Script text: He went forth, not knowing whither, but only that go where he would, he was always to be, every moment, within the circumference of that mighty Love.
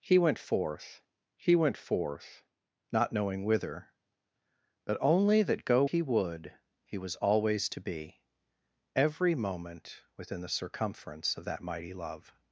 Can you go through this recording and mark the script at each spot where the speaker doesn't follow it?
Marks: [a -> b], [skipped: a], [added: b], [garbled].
He went forth, [added: he went forth] not knowing whither, but only that go [skipped: where] he would, he was always to be, every moment, within the circumference of that mighty Love.